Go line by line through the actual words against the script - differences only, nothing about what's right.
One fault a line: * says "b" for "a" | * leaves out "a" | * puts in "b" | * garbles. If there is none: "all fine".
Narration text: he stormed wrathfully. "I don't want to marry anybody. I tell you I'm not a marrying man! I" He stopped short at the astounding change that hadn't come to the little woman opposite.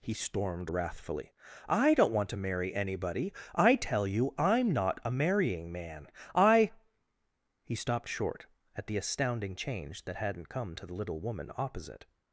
all fine